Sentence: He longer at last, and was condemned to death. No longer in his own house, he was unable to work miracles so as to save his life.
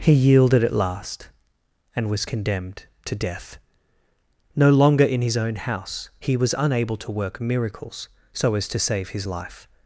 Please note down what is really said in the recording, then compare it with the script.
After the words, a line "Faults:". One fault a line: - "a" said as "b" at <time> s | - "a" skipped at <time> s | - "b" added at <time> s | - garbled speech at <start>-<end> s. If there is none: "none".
He yielded at last, and was condemned to death. No longer in his own house, he was unable to work miracles so as to save his life.
Faults:
- "longer" said as "yielded" at 0.1 s